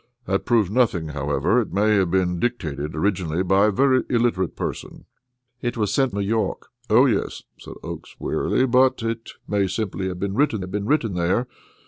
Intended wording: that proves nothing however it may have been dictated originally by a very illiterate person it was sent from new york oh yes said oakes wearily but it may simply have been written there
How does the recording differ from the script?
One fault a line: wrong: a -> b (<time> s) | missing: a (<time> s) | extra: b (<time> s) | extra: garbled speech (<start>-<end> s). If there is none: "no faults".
missing: from (6.2 s)
extra: have been written (10.6 s)